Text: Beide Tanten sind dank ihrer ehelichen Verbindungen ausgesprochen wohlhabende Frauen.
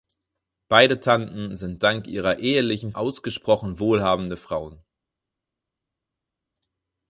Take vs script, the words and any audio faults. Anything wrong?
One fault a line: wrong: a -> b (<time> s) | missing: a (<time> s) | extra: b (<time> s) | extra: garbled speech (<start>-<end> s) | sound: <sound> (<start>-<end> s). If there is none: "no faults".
missing: Verbindungen (2.9 s)